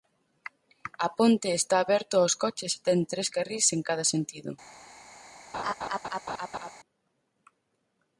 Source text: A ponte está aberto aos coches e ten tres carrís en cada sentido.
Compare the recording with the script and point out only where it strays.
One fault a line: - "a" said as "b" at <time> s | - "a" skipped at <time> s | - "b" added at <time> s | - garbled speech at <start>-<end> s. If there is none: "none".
none